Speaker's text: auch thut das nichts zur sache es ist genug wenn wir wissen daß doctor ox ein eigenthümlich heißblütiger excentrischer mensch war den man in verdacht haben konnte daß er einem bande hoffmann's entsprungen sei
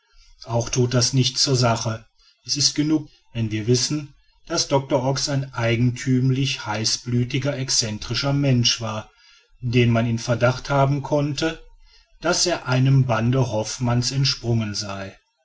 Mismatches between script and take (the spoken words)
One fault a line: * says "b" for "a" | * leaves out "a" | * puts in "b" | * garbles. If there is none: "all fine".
all fine